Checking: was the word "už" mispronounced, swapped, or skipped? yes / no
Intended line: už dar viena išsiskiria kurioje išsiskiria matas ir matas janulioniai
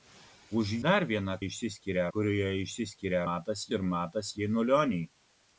no